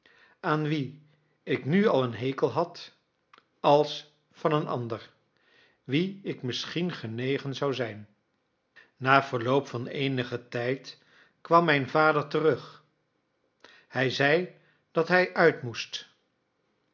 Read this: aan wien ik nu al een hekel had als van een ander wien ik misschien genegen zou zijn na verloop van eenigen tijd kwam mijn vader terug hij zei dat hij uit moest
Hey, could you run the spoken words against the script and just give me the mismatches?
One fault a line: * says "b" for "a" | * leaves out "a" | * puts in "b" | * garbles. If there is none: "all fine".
all fine